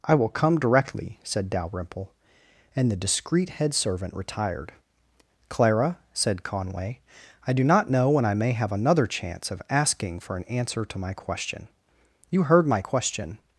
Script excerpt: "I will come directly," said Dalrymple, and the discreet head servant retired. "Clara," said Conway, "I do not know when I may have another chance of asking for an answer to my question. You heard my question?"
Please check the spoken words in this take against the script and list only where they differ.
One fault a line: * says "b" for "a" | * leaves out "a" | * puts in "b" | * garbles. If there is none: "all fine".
all fine